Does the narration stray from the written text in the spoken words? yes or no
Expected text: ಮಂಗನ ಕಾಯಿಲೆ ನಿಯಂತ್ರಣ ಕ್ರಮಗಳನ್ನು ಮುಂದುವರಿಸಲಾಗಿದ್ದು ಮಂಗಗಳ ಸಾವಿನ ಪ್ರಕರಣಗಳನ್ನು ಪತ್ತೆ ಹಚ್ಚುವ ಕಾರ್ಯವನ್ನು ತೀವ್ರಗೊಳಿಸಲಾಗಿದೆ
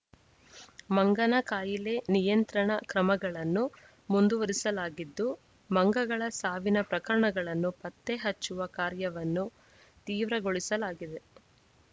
no